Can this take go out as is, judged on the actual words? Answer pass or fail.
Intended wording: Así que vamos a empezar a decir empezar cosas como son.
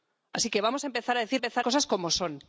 pass